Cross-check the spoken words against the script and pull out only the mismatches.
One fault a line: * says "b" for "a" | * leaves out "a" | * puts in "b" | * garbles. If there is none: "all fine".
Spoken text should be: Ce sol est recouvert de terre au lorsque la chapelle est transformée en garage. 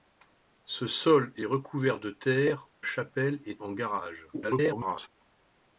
* leaves out "au lorsque la"
* leaves out "transformée"
* garbles